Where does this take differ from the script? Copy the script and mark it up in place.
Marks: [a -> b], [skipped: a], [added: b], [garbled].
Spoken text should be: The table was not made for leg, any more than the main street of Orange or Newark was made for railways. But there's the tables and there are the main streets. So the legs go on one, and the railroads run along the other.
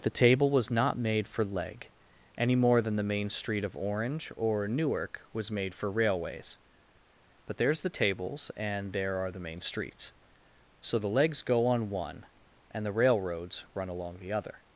The table was not made for leg, any more than the main street of Orange or Newark was made for railways. But there's the tables and there are the main streets. So the legs go on one, and the railroads run along the other.